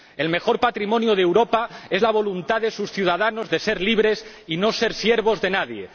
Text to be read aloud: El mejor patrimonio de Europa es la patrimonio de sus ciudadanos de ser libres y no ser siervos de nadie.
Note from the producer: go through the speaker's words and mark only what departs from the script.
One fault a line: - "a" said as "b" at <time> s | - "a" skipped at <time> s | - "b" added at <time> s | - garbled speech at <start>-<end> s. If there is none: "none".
- "patrimonio" said as "voluntad" at 2.1 s